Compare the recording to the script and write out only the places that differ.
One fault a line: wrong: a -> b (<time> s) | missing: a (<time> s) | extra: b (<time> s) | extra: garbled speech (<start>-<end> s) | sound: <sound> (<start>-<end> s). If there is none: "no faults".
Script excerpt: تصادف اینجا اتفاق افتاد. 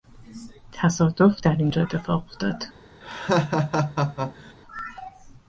extra: در (1.4 s)
sound: laugh (3.0-4.5 s)